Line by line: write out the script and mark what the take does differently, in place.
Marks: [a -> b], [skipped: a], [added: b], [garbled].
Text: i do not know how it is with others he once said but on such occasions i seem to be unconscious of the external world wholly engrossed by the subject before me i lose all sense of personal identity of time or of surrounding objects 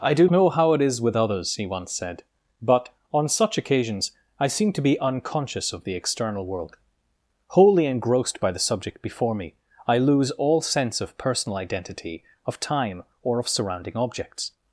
i do [skipped: not] know how it is with others he once said but on such occasions i seem to be unconscious of the external world wholly engrossed by the subject before me i lose all sense of personal identity of time or of surrounding objects